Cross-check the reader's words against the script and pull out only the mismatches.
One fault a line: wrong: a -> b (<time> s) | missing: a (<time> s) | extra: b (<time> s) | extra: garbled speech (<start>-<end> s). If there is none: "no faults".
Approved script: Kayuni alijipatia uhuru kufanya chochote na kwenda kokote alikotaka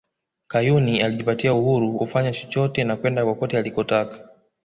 no faults